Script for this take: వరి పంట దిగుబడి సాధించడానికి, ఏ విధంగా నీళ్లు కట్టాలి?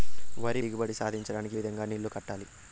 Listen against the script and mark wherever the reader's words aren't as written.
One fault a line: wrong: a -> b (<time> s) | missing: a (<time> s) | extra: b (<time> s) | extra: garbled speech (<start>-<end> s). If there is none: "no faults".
missing: పంట (0.6 s)
missing: ఏ (1.6 s)